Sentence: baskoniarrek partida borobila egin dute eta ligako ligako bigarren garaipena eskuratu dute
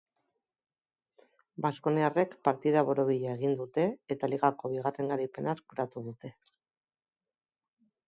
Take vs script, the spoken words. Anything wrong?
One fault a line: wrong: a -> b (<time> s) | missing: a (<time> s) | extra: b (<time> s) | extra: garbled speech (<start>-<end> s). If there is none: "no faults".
missing: ligako (4.8 s)